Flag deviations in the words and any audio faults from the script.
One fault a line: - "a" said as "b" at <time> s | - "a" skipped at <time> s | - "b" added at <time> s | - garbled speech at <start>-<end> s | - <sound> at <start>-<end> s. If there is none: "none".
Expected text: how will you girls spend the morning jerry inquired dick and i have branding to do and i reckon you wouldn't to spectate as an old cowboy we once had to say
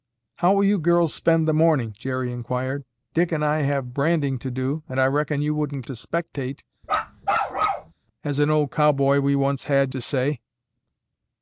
- bark at 6.8-7.9 s